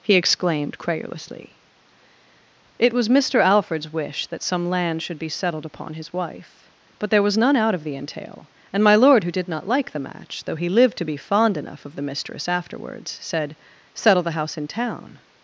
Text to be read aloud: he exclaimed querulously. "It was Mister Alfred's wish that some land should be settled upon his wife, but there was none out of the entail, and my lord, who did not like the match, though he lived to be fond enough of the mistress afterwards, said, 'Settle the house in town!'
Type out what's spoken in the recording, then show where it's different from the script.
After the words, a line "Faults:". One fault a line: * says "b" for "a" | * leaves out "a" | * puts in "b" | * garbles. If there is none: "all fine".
he exclaimed querulously. "It was Mister Alfred's wish that some land should be settled upon his wife, but there was none out of the entail, and my lord, who did not like the match, though he lived to be fond enough of the mistress afterwards, said, 'Settle the house in town!'
Faults:
all fine